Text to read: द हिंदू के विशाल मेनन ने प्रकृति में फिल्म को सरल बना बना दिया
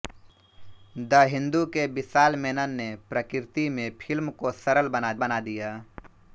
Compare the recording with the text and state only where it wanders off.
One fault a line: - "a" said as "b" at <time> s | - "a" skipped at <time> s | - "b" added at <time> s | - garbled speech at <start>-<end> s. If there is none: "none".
none